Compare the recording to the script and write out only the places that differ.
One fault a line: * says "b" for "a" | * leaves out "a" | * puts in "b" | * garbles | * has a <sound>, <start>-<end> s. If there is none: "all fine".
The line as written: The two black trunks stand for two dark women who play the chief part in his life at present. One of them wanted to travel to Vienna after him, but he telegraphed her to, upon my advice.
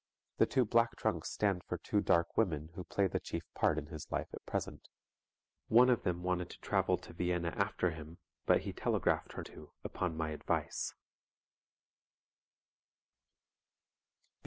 all fine